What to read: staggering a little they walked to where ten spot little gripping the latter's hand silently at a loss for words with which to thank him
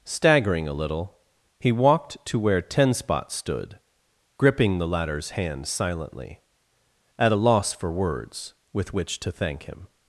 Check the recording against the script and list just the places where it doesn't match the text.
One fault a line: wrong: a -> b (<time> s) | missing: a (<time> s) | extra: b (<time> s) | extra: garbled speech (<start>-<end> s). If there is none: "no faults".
wrong: they -> he (1.6 s)
wrong: little -> stood (3.3 s)